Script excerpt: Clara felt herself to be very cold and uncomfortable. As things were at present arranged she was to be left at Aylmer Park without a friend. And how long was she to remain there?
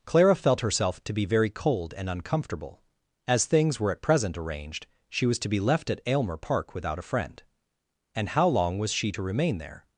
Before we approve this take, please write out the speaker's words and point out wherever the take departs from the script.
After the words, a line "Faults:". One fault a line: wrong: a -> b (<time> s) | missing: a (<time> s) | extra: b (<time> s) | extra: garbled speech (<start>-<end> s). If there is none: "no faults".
Clara felt herself to be very cold and uncomfortable. As things were at present arranged she was to be left at Aylmer Park without a friend. And how long was she to remain there?
Faults:
no faults